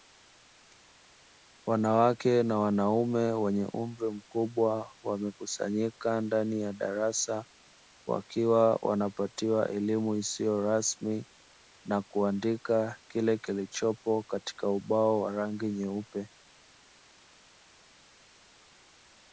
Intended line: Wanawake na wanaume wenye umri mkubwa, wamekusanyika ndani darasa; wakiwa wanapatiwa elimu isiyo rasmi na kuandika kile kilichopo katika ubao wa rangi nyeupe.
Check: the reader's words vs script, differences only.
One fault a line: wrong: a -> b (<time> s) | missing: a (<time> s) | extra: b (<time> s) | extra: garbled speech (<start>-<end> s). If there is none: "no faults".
extra: ya (6.6 s)